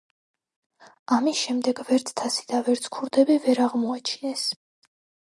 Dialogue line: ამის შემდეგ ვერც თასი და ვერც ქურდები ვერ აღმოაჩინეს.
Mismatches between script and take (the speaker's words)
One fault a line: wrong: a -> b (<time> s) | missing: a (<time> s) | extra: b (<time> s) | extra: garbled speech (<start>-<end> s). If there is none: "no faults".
no faults